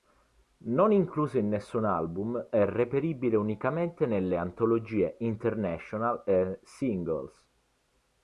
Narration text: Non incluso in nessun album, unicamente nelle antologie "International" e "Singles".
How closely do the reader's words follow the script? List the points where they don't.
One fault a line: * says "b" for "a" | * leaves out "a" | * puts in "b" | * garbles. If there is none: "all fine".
* puts in "è reperibile"